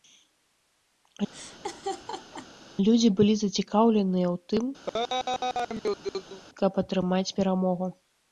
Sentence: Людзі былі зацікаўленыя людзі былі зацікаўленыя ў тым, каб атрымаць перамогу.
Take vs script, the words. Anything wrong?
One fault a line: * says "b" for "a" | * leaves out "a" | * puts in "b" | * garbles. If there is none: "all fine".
* leaves out "людзі былі зацікаўленыя"